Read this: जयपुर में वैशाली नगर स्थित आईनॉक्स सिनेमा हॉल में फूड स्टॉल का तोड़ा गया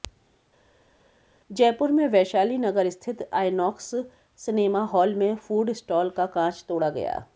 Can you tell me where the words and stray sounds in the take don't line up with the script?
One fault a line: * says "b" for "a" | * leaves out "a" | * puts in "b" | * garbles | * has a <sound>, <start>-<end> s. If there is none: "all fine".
* puts in "कांच"